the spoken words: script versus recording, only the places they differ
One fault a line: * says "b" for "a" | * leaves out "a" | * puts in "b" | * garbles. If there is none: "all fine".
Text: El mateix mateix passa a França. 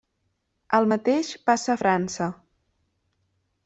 * leaves out "mateix"